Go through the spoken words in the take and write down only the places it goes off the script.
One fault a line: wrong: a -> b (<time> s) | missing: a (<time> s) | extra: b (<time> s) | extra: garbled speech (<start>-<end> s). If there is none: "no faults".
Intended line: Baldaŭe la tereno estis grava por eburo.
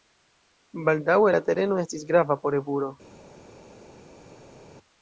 no faults